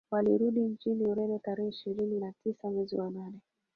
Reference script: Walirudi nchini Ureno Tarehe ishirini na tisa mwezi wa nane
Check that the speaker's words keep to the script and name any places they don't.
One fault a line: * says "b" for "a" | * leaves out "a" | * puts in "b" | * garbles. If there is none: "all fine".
all fine